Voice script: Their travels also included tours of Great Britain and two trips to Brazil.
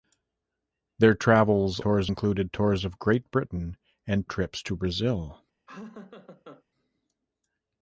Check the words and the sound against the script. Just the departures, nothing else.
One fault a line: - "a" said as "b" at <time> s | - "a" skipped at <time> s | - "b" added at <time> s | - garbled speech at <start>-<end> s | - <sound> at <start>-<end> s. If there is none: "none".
- "also" said as "tours" at 1.8 s
- "two" skipped at 4.3 s
- laugh at 5.7-6.6 s